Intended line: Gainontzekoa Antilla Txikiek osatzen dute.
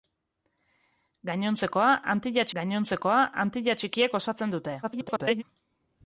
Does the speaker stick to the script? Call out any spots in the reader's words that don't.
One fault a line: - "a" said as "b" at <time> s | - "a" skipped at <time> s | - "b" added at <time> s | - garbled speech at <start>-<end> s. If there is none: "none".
- "gainontzekoa Antilla" added at 2.6 s
- garbled speech at 4.8-5.4 s